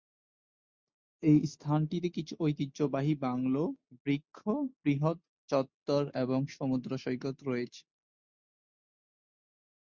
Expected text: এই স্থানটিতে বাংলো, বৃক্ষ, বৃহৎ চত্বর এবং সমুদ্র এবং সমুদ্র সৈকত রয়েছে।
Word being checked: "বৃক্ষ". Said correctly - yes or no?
yes